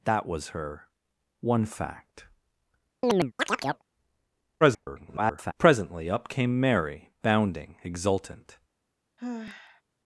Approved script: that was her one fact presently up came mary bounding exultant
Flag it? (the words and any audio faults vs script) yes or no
yes